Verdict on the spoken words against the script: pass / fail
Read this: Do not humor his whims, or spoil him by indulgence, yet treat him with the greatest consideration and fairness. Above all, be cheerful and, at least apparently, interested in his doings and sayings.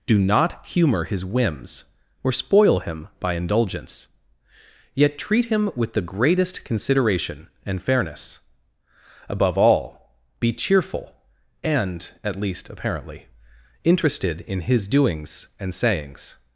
pass